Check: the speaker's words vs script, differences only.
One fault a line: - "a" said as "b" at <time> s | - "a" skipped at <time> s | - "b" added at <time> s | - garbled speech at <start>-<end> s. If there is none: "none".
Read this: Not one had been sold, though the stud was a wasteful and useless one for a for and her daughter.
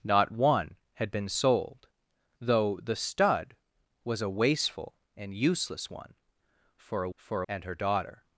none